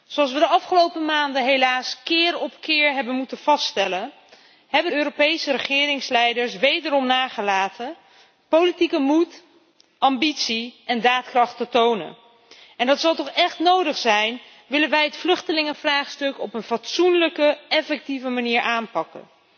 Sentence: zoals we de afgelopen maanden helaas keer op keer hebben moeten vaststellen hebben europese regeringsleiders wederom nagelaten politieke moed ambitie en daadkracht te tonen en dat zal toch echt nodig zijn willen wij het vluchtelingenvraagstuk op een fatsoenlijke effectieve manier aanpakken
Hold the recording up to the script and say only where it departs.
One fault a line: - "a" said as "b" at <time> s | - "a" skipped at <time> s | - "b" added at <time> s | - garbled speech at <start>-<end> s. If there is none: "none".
none